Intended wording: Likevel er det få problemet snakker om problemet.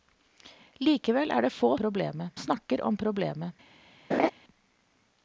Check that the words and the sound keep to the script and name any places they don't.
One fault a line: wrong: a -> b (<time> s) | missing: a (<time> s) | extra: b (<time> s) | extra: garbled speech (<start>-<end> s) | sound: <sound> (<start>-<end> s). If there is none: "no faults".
sound: laugh (4.1-4.3 s)